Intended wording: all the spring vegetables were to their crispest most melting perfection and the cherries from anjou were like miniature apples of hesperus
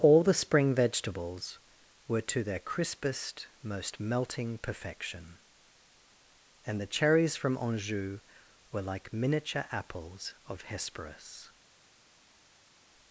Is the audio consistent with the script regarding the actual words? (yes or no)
yes